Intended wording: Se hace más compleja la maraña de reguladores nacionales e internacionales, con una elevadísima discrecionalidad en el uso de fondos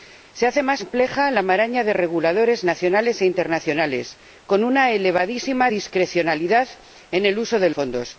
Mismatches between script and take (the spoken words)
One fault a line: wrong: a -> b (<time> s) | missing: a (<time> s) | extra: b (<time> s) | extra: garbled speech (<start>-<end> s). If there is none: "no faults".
no faults